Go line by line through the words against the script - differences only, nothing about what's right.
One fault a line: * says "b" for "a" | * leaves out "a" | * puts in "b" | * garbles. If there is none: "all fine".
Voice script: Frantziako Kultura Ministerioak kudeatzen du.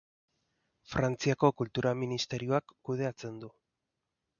all fine